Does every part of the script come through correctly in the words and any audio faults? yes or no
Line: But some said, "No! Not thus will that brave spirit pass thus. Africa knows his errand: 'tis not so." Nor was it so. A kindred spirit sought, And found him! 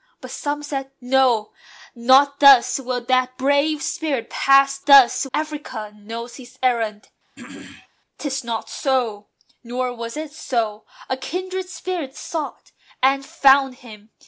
no